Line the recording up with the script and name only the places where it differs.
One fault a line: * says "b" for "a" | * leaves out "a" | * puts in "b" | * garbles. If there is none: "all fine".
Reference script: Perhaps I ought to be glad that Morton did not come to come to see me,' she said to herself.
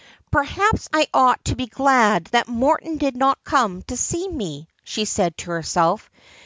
* leaves out "come to"